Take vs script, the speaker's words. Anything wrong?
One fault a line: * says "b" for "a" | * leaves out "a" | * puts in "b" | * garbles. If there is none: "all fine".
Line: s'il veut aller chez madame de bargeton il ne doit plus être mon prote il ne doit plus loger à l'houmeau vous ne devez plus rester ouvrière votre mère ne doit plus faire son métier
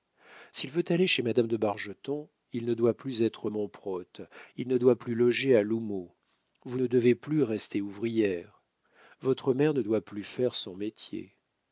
all fine